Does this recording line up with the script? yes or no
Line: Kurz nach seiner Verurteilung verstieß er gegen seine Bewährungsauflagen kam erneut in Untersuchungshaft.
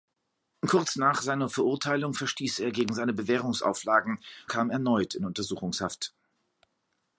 yes